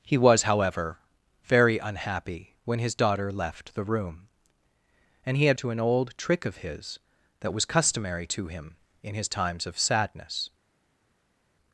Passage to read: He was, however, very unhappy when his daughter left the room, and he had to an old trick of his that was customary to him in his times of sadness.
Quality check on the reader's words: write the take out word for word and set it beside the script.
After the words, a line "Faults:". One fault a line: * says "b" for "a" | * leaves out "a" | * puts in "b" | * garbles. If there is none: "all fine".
He was, however, very unhappy when his daughter left the room, and he had to an old trick of his that was customary to him in his times of sadness.
Faults:
all fine